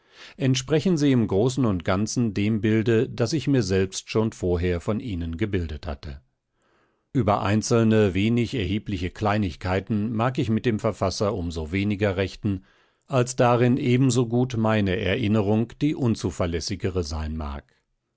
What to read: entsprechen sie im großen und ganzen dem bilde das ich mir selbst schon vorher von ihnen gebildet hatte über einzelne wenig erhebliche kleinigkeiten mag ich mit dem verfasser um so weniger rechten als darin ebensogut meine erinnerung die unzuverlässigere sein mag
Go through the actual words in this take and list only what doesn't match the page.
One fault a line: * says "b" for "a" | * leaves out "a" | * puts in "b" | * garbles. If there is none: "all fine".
all fine